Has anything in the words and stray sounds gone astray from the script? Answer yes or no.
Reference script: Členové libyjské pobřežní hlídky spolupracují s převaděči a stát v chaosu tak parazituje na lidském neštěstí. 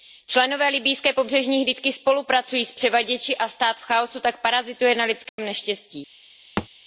yes